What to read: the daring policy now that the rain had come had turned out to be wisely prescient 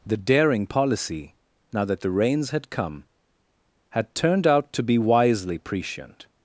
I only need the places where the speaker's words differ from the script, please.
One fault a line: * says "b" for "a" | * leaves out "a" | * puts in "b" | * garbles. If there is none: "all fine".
* says "rains" for "rain"